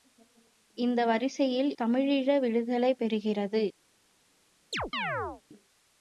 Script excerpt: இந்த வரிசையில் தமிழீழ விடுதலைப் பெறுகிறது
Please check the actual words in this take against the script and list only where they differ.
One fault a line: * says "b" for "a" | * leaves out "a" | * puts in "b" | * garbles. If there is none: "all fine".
all fine